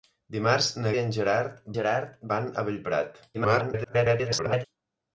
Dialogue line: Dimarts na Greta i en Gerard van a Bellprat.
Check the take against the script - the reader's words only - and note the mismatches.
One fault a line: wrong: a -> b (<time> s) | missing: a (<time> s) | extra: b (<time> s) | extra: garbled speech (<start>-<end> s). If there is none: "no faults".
missing: Greta (0.9 s)
extra: Gerard (1.8 s)
extra: garbled speech (3.3-4.7 s)